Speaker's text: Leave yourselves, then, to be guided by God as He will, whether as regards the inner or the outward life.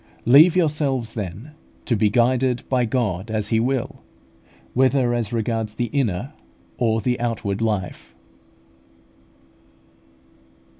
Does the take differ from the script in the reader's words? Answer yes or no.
no